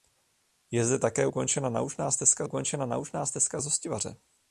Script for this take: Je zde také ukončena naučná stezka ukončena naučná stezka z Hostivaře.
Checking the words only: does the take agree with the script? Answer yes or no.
yes